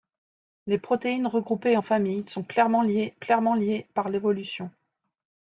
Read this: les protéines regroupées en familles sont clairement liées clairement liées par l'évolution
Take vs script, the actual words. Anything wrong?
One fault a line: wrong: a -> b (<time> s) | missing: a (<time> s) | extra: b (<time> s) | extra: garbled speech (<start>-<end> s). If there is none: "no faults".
no faults